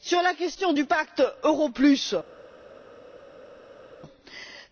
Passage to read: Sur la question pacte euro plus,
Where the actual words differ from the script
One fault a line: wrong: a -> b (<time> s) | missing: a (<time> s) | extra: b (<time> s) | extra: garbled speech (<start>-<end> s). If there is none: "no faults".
extra: du (0.7 s)